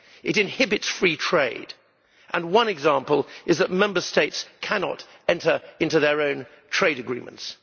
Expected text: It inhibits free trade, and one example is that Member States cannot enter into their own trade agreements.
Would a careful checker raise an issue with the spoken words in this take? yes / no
no